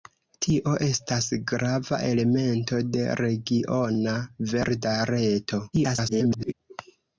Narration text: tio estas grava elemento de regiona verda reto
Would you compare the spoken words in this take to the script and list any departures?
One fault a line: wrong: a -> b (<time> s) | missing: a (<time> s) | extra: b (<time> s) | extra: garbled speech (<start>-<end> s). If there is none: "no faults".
extra: garbled speech (5.7-6.5 s)